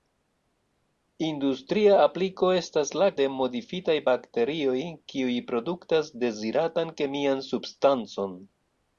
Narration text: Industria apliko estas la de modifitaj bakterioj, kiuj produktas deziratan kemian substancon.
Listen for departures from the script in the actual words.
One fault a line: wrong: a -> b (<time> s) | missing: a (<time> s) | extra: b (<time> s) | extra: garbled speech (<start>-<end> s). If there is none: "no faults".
no faults